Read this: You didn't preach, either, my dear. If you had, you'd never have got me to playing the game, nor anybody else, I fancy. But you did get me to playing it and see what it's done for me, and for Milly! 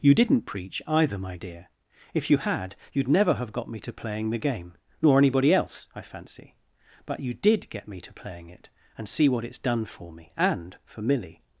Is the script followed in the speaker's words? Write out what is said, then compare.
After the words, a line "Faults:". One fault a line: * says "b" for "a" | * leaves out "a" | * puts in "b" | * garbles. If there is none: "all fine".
You didn't preach, either, my dear. If you had, you'd never have got me to playing the game, nor anybody else, I fancy. But you did get me to playing it and see what it's done for me, and for Milly!
Faults:
all fine